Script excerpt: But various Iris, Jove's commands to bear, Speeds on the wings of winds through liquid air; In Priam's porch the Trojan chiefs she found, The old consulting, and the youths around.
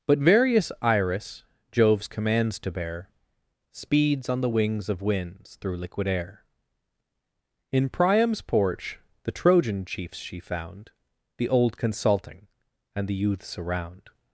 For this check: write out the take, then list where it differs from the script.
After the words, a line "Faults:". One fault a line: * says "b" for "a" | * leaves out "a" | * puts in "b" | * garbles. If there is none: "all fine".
But various Iris, Jove's commands to bear, Speeds on the wings of winds through liquid air; In Priam's porch the Trojan chiefs she found, The old consulting, and the youths around.
Faults:
all fine